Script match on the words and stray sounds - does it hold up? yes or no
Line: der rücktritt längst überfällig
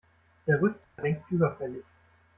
no